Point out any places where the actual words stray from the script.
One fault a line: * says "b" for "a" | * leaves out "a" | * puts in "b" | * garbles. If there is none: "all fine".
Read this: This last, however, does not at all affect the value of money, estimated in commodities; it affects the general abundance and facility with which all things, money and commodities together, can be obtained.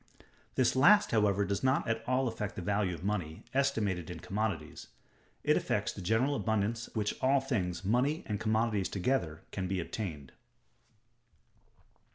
* leaves out "and facility with"